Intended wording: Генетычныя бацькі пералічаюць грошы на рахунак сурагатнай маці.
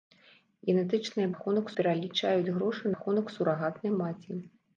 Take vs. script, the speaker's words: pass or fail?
fail